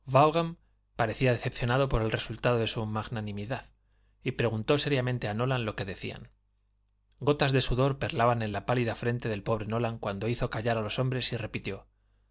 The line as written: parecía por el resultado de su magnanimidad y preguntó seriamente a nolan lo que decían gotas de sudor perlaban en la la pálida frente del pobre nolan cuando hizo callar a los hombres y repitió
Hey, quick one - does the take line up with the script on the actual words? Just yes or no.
no